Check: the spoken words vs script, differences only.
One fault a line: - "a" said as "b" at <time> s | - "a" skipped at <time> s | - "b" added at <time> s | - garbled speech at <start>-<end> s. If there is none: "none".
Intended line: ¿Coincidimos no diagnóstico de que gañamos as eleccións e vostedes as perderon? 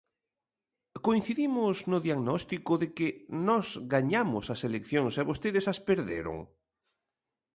- "nós" added at 3.5 s